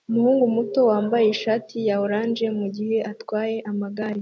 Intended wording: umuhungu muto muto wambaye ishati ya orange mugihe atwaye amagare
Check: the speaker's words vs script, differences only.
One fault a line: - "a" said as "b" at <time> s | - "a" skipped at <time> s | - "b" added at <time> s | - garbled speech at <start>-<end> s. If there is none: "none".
- "muto" skipped at 0.8 s